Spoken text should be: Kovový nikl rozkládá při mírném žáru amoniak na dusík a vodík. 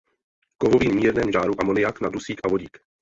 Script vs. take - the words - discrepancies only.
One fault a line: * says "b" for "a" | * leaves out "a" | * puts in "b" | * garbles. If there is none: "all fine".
* leaves out "nikl rozkládá při"